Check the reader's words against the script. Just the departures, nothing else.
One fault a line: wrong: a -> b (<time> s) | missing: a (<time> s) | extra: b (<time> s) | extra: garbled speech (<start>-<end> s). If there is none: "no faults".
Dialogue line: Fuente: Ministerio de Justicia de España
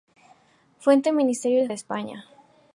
missing: Justicia (1.7 s)